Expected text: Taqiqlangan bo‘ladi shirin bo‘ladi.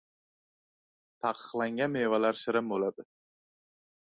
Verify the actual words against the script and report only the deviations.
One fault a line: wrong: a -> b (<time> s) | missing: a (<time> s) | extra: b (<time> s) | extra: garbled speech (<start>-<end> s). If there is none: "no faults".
wrong: bo‘ladi -> mevalar (2.0 s)